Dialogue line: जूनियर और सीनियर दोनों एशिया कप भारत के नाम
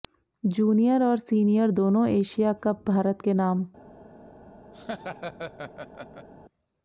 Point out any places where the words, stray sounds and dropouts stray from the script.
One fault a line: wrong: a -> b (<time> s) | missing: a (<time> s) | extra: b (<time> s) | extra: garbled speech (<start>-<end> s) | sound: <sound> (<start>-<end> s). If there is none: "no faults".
sound: laugh (4.7-6.3 s)